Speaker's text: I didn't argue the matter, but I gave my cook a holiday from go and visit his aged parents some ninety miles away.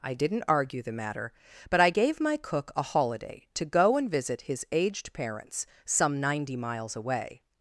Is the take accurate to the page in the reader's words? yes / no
no